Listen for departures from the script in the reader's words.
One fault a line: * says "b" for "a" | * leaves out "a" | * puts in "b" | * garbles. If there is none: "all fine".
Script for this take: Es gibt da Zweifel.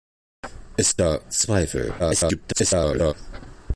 * leaves out "gibt"
* garbles